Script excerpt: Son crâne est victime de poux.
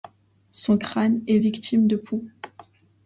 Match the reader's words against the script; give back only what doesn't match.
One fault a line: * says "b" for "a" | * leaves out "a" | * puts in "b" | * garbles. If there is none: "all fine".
all fine